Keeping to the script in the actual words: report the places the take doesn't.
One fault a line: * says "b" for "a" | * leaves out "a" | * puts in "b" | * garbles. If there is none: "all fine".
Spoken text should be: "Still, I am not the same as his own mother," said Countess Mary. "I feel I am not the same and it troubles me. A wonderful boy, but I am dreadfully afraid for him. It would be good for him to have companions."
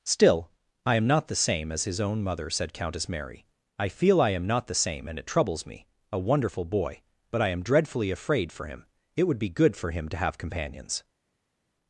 all fine